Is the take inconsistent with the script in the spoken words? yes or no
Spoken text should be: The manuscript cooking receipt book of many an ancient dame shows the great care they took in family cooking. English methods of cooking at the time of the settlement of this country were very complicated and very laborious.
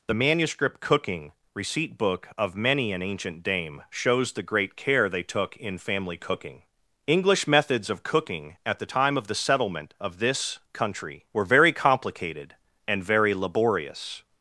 no